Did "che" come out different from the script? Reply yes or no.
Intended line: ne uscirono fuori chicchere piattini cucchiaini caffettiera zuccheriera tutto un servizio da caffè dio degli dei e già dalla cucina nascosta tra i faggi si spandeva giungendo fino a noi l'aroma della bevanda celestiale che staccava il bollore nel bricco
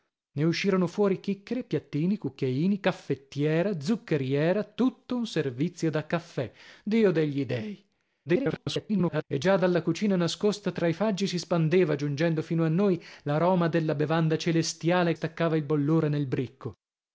yes